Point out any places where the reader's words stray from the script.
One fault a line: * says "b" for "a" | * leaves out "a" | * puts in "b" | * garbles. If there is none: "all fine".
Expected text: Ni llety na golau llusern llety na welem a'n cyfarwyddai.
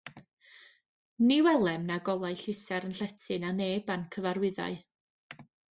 * says "welem" for "llety"
* says "neb" for "welem"